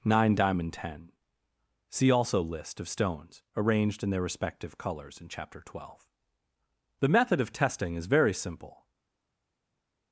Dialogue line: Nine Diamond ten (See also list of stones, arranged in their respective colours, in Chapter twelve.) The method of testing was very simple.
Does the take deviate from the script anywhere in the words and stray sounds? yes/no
yes